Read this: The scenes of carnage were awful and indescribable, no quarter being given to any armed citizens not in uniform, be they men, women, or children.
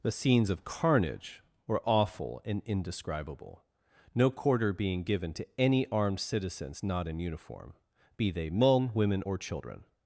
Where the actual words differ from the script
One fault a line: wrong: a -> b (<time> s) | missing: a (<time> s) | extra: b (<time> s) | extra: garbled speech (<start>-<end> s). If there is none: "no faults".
no faults